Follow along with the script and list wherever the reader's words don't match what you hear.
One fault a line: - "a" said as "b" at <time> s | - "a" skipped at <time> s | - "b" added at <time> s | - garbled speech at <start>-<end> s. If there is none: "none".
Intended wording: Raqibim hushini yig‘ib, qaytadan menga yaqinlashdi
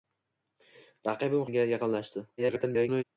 - "hushini yig‘ib qaytadan" skipped at 1.4 s
- garbled speech at 2.4-3.0 s